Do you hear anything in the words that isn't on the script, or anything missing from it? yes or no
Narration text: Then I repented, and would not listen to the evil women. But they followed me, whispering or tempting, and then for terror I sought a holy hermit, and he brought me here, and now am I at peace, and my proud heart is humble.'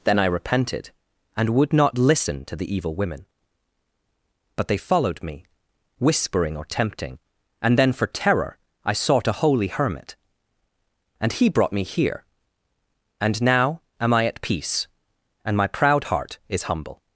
no